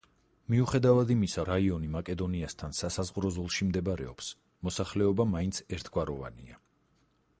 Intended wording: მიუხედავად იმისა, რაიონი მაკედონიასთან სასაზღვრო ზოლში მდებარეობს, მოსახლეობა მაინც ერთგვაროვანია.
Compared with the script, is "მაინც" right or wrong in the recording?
right